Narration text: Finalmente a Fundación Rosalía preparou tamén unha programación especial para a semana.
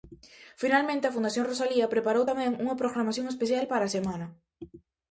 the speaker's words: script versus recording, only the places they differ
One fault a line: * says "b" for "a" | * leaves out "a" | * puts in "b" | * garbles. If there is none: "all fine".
all fine